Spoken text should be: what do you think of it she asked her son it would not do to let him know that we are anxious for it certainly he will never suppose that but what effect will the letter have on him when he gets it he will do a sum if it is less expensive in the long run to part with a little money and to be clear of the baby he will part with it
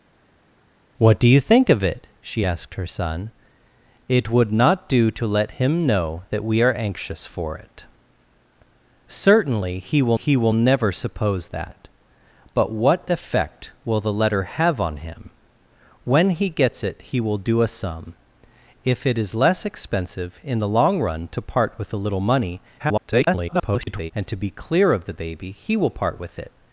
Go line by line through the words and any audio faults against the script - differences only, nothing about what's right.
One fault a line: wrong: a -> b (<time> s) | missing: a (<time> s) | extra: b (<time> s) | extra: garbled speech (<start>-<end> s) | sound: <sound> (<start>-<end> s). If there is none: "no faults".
extra: he will (10.1 s)
extra: garbled speech (22.8-24.1 s)